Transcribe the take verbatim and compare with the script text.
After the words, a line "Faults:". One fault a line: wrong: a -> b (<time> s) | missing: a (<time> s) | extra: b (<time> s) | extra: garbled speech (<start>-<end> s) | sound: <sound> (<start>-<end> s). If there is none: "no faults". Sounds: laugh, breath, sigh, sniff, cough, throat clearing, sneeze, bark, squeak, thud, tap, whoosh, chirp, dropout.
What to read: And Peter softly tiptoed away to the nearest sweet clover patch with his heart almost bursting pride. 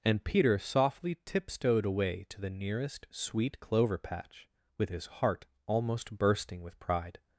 And Peter softly tiptoed away to the nearest sweet clover patch with his heart almost bursting with pride.
Faults:
extra: with (6.6 s)